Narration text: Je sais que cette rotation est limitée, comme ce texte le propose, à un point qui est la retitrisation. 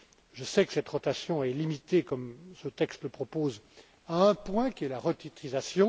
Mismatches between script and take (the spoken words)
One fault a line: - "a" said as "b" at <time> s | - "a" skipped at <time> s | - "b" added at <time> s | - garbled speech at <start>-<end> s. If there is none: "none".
none